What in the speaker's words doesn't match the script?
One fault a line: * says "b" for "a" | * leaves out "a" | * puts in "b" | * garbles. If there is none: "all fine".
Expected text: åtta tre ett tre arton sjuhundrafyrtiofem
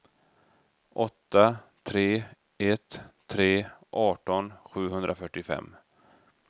all fine